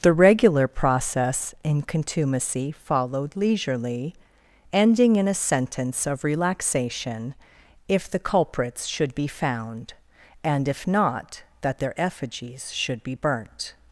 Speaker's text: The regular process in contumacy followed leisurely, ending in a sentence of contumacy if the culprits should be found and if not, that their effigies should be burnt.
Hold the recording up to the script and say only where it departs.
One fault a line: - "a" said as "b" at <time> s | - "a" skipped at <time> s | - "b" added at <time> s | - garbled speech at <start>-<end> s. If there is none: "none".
- "contumacy" said as "relaxation" at 6.2 s